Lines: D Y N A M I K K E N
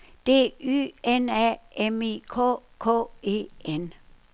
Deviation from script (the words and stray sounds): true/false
false